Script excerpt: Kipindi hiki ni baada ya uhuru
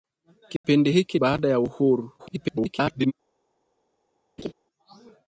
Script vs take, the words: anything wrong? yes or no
yes